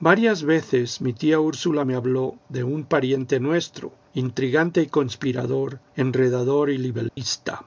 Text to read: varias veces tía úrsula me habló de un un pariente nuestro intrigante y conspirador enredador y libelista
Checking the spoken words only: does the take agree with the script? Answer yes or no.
no